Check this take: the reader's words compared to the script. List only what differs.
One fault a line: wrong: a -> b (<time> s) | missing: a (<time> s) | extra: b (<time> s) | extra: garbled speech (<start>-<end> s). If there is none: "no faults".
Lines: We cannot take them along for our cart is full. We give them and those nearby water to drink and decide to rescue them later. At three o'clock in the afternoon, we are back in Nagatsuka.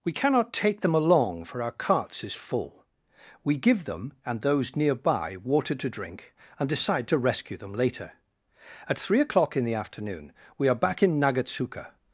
wrong: cart -> carts (1.7 s)